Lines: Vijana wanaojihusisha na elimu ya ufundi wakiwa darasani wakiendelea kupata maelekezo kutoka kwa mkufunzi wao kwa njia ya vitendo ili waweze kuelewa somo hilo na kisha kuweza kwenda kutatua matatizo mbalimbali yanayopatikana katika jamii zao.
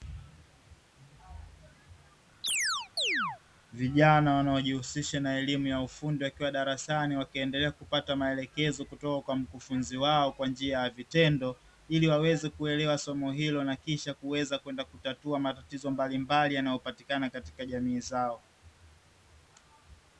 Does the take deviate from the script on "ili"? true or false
false